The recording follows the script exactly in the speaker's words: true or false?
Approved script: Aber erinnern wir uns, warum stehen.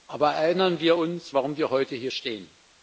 false